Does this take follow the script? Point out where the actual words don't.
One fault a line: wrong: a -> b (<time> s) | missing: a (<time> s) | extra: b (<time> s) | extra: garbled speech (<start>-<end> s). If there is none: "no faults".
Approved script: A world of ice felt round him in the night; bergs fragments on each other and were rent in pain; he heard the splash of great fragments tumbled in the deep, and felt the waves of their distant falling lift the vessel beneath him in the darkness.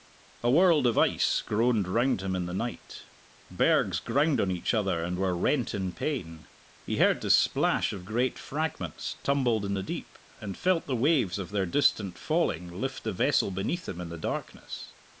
wrong: felt -> groaned (1.4 s)
wrong: fragments -> ground (4.0 s)